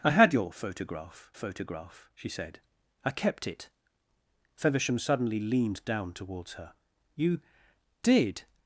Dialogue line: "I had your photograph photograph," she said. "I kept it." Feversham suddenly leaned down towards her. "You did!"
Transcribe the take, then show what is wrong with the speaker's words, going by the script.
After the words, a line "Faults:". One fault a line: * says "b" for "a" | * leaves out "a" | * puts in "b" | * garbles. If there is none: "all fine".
"I had your photograph photograph," she said. "I kept it." Feversham suddenly leaned down towards her. "You did!"
Faults:
all fine